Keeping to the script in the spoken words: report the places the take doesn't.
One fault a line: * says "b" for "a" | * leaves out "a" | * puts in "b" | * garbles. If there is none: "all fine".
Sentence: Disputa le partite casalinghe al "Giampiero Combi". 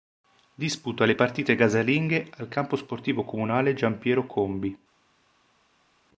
* puts in "campo sportivo comunale"